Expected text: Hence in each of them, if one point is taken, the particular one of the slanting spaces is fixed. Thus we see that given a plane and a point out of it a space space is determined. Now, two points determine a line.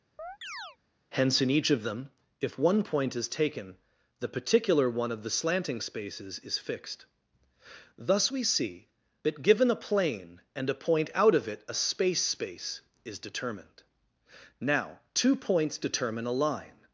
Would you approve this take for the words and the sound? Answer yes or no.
no